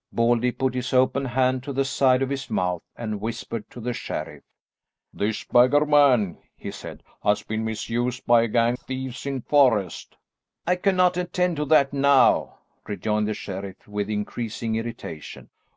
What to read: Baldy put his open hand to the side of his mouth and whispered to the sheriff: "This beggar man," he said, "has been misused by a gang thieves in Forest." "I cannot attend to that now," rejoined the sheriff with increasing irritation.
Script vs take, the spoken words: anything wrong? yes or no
no